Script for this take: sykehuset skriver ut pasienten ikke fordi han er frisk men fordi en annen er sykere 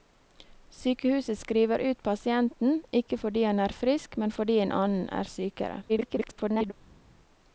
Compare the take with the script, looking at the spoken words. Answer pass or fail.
fail